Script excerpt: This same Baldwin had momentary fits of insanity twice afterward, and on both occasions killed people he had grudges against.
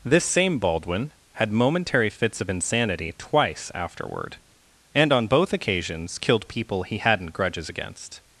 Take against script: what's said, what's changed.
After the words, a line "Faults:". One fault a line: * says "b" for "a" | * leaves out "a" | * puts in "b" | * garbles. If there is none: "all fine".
This same Baldwin had momentary fits of insanity twice afterward, and on both occasions killed people he hadn't grudges against.
Faults:
* says "hadn't" for "had"